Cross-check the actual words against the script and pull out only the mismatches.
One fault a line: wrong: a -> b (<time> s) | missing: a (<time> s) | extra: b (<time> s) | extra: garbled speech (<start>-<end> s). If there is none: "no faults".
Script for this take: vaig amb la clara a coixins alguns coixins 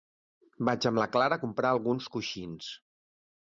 wrong: coixins -> comprar (1.4 s)